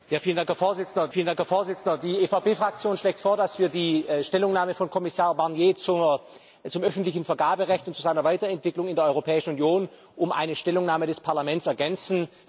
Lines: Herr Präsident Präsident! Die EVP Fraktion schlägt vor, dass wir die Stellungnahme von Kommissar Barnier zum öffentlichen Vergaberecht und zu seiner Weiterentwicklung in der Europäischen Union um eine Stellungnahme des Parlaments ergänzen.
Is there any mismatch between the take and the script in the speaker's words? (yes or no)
no